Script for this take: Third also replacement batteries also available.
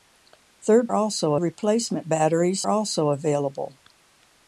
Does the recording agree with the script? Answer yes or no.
yes